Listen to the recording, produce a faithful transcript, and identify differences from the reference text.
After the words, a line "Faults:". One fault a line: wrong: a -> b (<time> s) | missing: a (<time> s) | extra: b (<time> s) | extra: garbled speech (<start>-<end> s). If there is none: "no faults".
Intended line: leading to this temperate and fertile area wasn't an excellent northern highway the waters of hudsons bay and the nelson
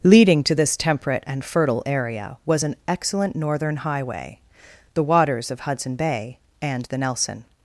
leading to this temperate and fertile area was an excellent northern highway the waters of hudson bay and the nelson
Faults:
wrong: wasn't -> was (2.4 s)
wrong: hudsons -> hudson (5.6 s)